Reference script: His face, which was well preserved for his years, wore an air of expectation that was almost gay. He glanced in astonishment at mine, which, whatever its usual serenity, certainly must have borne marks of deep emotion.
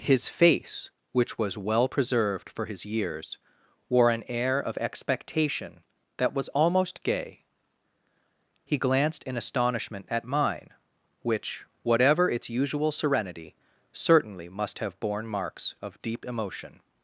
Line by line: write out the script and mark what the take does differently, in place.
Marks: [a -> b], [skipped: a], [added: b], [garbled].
His face, which was well preserved for his years, wore an air of expectation that was almost gay. He glanced in astonishment at mine, which, whatever its usual serenity, certainly must have borne marks of deep emotion.